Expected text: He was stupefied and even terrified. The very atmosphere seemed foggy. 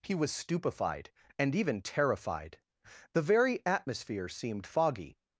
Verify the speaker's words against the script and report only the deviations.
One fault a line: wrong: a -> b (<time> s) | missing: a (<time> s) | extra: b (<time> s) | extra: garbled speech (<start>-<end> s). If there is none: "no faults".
no faults